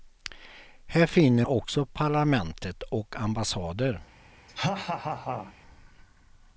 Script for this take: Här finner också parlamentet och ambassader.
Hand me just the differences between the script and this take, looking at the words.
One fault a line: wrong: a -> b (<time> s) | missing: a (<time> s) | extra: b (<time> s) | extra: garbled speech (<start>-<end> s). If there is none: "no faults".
no faults